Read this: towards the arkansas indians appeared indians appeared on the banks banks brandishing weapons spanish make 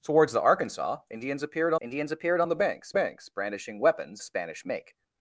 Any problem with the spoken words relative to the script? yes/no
no